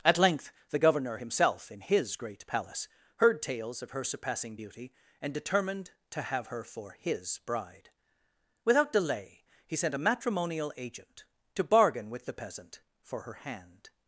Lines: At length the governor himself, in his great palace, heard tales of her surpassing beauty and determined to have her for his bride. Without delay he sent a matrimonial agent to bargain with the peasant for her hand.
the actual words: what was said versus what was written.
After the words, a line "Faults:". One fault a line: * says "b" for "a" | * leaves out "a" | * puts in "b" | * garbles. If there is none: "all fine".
At length the governor himself, in his great palace, heard tales of her surpassing beauty and determined to have her for his bride. Without delay he sent a matrimonial agent to bargain with the peasant for her hand.
Faults:
all fine